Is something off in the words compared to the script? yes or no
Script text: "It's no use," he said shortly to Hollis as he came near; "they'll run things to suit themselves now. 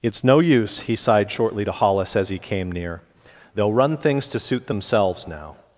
yes